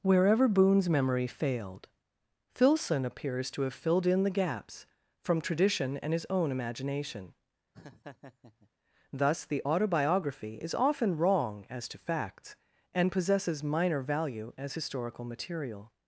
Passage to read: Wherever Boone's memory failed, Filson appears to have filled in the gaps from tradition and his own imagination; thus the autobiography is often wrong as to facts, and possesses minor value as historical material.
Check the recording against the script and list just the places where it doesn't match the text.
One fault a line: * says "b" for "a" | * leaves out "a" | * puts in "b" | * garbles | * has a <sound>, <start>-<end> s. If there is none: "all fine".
* has a laugh, 7.7-8.7 s